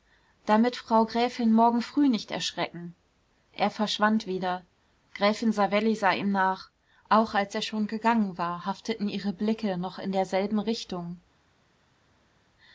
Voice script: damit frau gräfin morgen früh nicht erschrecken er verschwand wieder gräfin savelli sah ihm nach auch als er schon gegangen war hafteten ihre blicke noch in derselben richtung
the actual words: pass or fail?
pass